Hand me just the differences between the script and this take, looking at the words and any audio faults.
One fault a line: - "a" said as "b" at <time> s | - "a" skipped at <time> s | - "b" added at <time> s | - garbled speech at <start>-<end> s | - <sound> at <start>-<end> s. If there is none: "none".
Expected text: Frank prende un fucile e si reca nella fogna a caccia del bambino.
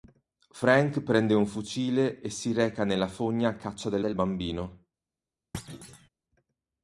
- "del" added at 4.0 s
- thud at 5.5-6.1 s